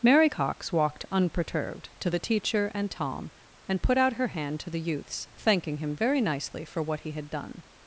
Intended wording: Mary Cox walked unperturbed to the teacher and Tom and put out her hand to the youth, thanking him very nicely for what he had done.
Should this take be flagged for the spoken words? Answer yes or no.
yes